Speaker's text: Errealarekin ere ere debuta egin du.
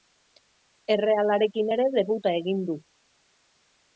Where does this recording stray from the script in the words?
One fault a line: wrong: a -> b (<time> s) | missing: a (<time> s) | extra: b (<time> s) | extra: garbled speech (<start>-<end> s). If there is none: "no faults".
missing: ere (1.9 s)